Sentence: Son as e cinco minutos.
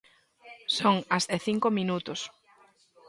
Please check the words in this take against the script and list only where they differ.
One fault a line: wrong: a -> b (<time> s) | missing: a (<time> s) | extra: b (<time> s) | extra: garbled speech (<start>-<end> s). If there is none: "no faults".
no faults